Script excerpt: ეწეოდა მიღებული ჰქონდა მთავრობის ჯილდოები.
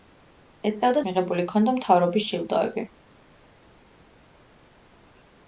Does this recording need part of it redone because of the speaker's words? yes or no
no